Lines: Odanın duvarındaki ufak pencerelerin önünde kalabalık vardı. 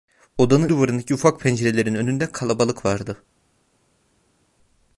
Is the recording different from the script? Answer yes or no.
no